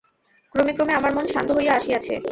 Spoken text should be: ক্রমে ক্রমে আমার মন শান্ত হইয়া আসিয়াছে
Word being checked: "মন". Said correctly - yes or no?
yes